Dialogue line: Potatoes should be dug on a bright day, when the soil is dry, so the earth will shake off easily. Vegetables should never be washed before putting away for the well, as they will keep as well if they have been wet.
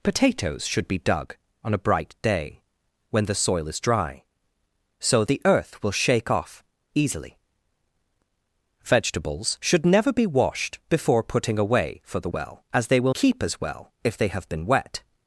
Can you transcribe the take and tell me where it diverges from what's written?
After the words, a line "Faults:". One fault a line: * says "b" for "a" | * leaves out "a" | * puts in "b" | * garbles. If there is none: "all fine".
Potatoes should be dug on a bright day, when the soil is dry, so the earth will shake off easily. Vegetables should never be washed before putting away for the well, as they will keep as well if they have been wet.
Faults:
all fine